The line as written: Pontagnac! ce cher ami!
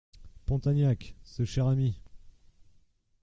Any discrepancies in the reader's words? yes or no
no